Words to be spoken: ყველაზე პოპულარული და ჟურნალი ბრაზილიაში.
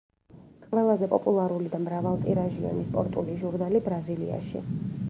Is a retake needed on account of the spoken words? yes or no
yes